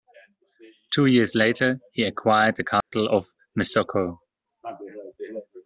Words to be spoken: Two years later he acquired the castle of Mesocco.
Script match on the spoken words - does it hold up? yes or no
yes